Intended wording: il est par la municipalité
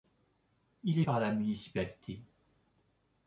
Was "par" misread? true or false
false